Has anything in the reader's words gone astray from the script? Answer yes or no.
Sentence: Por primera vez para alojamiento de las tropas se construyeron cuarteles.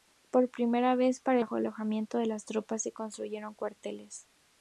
no